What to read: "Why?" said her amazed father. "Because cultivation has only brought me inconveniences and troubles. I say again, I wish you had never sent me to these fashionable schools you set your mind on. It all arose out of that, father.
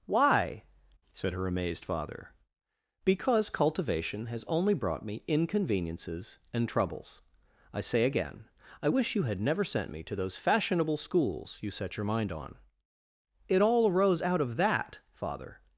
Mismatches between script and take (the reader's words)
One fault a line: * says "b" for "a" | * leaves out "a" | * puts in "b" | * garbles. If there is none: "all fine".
* says "those" for "these"